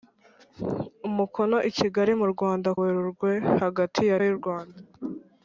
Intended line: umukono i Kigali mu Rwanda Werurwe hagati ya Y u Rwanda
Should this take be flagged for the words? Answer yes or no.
no